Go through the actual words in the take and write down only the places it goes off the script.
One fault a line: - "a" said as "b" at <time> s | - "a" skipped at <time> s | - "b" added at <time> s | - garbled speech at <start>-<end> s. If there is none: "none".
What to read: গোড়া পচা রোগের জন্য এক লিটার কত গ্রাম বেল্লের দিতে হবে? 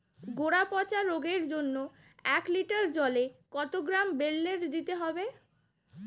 - "জলে" added at 2.9 s